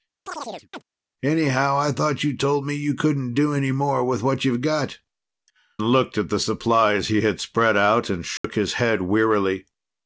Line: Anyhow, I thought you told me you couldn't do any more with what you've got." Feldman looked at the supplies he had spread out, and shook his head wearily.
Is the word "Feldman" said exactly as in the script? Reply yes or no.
no